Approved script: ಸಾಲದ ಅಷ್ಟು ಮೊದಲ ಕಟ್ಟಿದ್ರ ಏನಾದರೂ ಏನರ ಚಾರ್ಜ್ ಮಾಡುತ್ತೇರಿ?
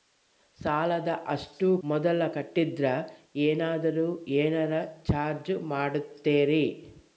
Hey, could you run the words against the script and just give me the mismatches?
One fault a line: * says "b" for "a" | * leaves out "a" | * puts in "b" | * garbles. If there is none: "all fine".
all fine